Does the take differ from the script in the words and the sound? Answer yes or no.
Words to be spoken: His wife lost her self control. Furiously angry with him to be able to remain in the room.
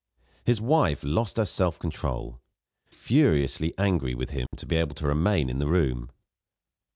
yes